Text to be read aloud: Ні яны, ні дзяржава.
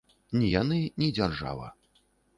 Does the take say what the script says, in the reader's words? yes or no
yes